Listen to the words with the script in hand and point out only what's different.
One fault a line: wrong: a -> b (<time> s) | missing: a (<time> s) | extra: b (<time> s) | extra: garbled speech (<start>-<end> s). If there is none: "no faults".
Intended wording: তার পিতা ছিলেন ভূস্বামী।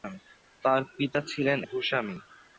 no faults